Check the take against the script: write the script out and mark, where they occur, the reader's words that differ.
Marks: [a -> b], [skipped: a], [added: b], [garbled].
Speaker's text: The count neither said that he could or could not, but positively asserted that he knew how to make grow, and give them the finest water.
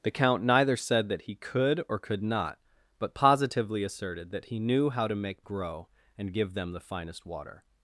The count neither said that he could or could not, but positively asserted that he knew how to make grow, and give them the finest water.